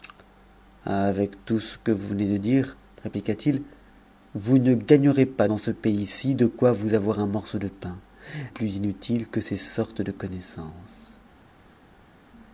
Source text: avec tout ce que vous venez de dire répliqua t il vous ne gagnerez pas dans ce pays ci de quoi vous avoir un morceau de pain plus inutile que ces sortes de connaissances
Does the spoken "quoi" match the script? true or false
true